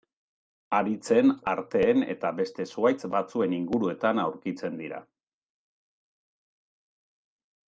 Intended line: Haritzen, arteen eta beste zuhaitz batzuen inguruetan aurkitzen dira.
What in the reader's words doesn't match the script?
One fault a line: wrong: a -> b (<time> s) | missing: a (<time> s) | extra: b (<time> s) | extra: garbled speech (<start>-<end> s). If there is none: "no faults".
no faults